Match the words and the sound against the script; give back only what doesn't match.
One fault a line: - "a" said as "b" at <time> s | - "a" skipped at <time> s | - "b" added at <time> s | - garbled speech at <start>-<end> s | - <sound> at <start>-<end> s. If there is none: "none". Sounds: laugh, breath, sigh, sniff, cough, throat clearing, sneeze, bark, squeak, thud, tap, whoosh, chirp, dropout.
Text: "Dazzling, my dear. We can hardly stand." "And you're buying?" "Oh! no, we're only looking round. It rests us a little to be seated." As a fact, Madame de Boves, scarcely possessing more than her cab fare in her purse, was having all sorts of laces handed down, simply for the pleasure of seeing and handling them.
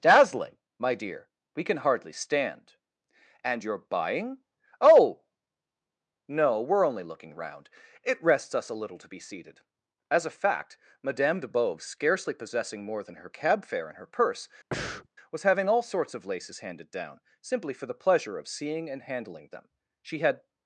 - breath at 14.7-15.1 s
- "She had" added at 20.0 s